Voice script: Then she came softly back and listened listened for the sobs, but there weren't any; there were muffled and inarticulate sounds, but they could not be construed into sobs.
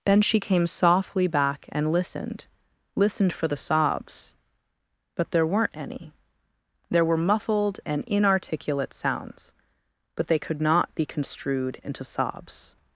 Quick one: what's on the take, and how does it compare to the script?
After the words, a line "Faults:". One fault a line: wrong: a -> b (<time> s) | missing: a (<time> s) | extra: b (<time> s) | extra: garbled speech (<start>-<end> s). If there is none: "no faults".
Then she came softly back and listened listened for the sobs, but there weren't any; there were muffled and inarticulate sounds, but they could not be construed into sobs.
Faults:
no faults